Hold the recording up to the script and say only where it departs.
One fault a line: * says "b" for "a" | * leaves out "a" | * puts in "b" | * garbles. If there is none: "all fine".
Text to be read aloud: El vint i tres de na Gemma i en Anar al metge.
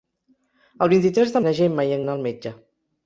all fine